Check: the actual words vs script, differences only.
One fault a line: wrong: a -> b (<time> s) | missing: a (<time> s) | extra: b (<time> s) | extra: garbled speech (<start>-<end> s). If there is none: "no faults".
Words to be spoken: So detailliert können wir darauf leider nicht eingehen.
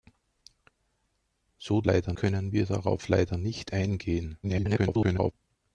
wrong: detailliert -> leider (1.8 s)
extra: garbled speech (4.4-5.3 s)